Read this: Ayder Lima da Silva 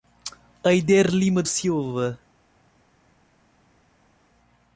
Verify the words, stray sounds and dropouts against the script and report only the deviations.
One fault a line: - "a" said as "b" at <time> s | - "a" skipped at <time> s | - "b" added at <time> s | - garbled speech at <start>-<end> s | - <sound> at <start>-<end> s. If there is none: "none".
- "da" skipped at 1.4 s